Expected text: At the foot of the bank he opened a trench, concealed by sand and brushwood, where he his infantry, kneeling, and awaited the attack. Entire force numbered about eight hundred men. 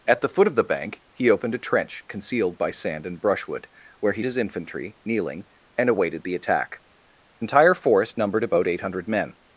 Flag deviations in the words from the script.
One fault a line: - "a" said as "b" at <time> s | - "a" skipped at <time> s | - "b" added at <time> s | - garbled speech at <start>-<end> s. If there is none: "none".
none